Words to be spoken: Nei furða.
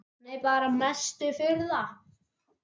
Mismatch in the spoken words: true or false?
true